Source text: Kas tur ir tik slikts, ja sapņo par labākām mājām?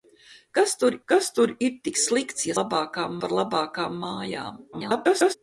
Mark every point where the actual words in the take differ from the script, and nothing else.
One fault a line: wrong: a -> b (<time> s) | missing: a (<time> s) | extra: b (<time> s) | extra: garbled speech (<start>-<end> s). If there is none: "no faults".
extra: kas tur (1.1 s)
wrong: sapņo -> labākām (2.6 s)
extra: garbled speech (4.7-5.4 s)